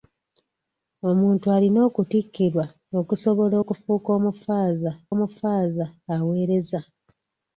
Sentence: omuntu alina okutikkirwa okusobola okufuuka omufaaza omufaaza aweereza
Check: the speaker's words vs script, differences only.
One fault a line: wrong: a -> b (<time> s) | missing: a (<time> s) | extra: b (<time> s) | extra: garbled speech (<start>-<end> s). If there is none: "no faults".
no faults